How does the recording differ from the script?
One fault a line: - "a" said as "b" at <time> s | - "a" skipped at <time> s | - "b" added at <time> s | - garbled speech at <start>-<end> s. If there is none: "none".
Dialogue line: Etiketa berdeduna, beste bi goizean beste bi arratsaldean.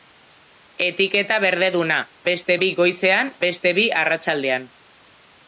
none